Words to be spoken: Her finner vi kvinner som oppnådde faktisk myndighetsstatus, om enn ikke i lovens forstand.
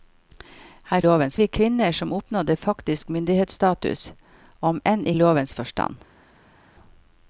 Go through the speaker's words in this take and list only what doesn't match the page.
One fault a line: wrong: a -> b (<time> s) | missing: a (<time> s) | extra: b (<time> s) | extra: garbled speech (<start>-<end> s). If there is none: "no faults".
wrong: finner -> lovens (1.0 s)
missing: ikke (5.1 s)